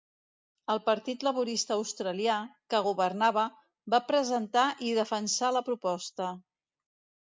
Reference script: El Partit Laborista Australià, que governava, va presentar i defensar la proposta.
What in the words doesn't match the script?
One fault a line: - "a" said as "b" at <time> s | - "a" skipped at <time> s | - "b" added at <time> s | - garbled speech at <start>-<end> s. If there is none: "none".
none